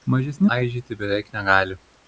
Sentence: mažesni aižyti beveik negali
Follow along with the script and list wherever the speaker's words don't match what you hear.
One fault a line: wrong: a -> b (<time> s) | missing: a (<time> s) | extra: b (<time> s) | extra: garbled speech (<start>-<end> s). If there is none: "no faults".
no faults